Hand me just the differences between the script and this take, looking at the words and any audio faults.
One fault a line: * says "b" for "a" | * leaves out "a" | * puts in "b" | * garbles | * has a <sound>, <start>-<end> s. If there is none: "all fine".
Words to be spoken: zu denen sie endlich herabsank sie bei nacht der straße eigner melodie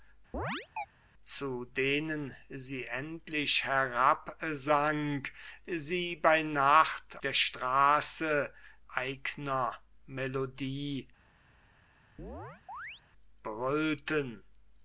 * has a chirp, 0.3-0.9 s
* has a chirp, 12.2-13.0 s